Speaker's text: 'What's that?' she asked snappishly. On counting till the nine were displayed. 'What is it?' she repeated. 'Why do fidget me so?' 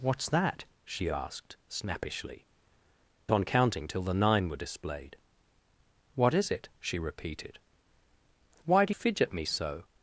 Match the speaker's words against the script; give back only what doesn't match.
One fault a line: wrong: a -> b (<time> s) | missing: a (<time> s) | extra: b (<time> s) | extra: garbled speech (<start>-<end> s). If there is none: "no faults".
no faults